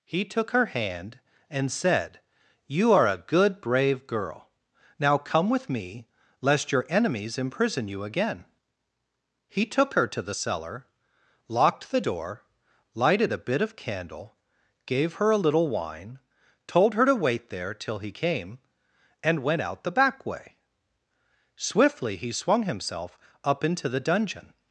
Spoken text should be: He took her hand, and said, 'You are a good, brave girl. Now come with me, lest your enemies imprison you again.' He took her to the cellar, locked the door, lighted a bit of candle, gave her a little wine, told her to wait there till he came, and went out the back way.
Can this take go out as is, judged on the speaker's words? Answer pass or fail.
fail